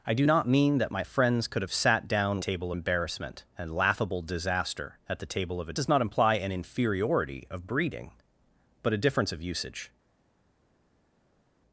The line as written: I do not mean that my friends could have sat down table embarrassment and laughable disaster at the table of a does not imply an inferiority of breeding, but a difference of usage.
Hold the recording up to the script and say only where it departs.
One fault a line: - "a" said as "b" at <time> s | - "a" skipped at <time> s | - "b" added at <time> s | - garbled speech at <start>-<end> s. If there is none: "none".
none